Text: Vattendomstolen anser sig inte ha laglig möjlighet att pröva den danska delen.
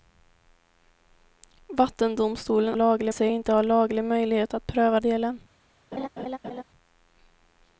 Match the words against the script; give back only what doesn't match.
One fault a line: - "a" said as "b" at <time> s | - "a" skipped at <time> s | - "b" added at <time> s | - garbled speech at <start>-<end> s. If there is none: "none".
- "anser" said as "laglig" at 2.7 s
- "den danska" skipped at 5.0 s